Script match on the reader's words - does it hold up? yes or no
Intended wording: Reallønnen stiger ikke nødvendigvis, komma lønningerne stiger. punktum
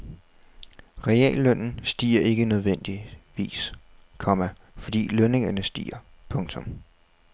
no